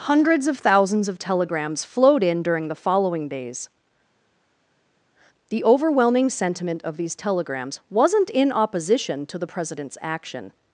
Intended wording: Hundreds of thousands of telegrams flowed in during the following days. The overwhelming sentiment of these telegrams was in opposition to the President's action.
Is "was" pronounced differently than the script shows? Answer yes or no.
yes